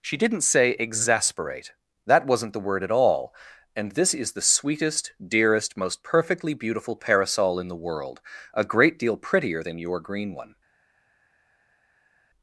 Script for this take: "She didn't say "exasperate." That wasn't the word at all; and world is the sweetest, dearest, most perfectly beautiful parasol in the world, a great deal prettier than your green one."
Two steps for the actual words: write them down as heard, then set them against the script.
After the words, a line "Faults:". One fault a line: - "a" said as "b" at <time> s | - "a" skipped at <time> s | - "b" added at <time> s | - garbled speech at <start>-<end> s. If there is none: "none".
"She didn't say "exasperate." That wasn't the word at all; and this is the sweetest, dearest, most perfectly beautiful parasol in the world, a great deal prettier than your green one."
Faults:
- "world" said as "this" at 3.9 s